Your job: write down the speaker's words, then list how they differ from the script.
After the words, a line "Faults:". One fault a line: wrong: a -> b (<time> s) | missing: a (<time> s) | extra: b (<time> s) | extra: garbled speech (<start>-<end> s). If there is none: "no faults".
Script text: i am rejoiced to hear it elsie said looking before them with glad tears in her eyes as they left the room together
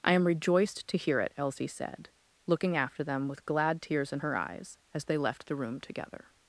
i am rejoiced to hear it elsie said looking after them with glad tears in her eyes as they left the room together
Faults:
wrong: before -> after (2.8 s)